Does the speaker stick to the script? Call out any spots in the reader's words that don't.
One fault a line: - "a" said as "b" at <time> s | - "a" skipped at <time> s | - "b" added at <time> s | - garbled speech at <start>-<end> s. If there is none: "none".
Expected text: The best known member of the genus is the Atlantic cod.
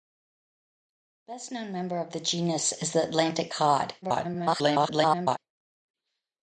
- garbled speech at 4.0-5.4 s